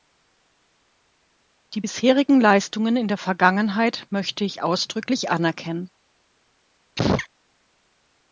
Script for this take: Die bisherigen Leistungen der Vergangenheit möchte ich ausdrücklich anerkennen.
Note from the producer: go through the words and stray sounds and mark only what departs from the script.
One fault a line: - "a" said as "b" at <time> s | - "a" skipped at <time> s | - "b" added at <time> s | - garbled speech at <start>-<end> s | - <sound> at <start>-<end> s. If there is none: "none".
- "in" added at 2.9 s
- sneeze at 7.0-7.3 s